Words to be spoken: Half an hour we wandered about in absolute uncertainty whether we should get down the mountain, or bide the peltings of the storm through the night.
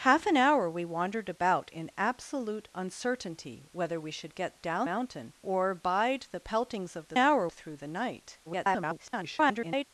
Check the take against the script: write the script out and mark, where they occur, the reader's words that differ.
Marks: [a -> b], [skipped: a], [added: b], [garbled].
Half an hour we wandered about in absolute uncertainty whether we should get down [skipped: the] mountain, or bide the peltings of the [storm -> hour] through the night. [garbled]